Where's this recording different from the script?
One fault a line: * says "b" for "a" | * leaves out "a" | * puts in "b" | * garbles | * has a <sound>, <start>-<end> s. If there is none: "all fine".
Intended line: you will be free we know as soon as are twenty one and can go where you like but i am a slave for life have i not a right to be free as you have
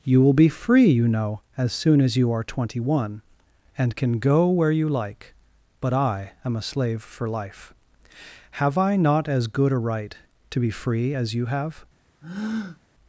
* says "you" for "we"
* puts in "you"
* puts in "as good"
* has a breath, 12.2-12.8 s